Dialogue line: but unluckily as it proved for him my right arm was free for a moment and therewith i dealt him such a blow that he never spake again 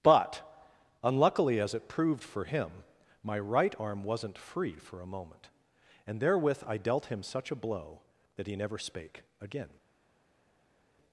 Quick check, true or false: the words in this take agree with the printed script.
false